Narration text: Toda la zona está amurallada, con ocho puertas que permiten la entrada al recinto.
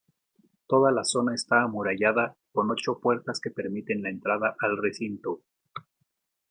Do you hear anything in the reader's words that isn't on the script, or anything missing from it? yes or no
no